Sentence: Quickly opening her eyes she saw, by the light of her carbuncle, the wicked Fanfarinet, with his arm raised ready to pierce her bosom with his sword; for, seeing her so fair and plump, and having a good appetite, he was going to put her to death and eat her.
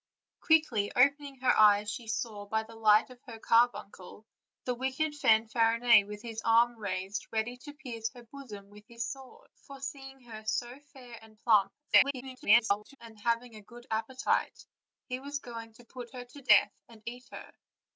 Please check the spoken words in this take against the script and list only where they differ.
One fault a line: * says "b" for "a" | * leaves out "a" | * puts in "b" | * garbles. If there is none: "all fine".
* garbles